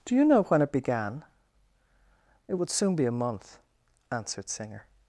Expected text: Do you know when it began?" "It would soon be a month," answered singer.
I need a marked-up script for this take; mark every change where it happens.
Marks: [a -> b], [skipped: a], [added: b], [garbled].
Do you know when it began?" "It would soon be a month," answered singer.